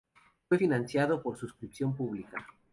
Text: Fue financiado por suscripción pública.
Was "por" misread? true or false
false